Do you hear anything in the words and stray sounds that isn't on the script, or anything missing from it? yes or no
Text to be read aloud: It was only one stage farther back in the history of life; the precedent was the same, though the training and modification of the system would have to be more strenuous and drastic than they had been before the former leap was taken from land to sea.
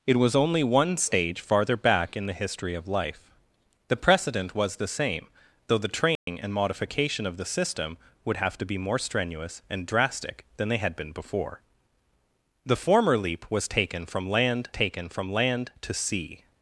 yes